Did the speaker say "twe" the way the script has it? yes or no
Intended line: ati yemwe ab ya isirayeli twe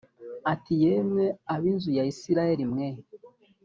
no